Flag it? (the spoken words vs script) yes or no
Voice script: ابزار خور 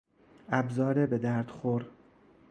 yes